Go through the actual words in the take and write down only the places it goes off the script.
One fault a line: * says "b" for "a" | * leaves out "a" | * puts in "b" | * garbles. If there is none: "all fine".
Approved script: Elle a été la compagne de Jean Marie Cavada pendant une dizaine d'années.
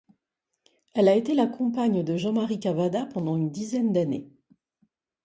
all fine